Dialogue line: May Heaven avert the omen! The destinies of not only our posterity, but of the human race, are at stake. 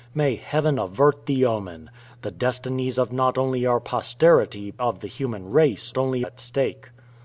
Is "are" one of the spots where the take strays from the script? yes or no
yes